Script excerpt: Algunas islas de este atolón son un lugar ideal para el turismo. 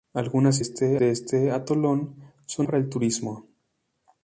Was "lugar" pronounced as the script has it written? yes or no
no